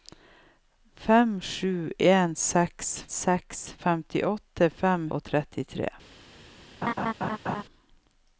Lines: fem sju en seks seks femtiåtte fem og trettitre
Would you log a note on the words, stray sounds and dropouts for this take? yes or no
yes